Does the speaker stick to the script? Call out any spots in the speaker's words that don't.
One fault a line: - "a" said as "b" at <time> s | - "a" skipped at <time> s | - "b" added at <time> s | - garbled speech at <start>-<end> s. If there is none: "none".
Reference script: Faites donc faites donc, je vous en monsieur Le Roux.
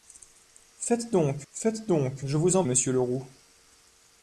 none